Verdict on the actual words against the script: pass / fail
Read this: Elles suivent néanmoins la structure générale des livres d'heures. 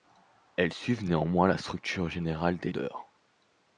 fail